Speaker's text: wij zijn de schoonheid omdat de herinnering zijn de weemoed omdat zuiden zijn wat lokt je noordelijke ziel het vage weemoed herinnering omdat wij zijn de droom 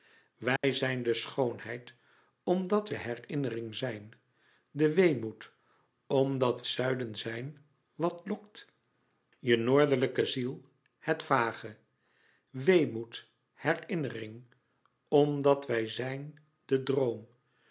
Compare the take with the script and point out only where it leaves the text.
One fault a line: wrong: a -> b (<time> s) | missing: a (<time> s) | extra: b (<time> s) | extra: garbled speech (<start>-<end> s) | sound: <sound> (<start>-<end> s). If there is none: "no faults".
sound: dropout (0.6-0.6 s)